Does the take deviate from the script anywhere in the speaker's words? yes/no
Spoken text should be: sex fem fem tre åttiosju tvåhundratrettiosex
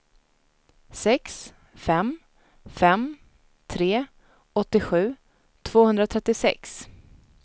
no